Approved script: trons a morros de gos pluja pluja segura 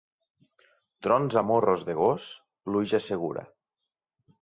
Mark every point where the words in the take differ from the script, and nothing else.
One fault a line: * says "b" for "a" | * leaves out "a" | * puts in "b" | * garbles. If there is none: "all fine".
* leaves out "pluja"